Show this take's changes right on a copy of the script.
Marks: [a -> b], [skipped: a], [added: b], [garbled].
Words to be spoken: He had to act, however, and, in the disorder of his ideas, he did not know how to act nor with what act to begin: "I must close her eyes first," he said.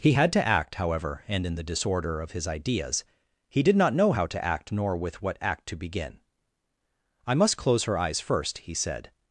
He had to act, however, and, in the disorder of his ideas, he did not know how to act nor with what act to begin: "I must close her eyes first," he said.